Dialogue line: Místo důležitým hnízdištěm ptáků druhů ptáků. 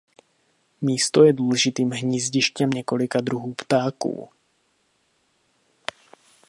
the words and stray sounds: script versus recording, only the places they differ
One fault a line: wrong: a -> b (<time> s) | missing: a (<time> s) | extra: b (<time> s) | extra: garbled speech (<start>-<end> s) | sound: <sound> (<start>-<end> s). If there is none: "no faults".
extra: je (1.2 s)
wrong: ptáků -> několika (2.7 s)